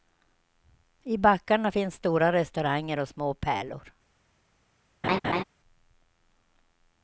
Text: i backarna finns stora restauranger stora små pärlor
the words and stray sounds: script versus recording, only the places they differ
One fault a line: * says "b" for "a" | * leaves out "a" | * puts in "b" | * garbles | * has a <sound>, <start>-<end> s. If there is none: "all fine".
* says "och" for "stora"
* has a laugh, 5.0-5.4 s